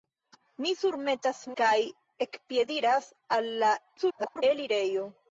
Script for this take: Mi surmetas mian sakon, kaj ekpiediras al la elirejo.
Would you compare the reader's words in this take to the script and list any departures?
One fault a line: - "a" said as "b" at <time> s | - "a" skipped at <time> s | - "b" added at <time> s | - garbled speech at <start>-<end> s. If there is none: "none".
- "mian sakon" skipped at 1.4 s
- garbled speech at 4.0-4.4 s